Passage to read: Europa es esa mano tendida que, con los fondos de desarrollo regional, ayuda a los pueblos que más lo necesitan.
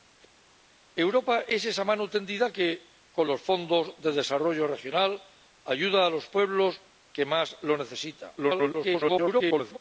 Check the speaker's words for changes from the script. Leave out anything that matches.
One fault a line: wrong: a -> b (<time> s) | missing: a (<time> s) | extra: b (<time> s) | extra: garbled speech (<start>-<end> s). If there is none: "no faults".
extra: garbled speech (8.4-9.8 s)